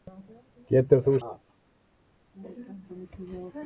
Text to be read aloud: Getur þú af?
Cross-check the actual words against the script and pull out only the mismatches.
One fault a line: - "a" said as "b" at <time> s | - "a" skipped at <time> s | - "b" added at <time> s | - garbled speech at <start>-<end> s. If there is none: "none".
none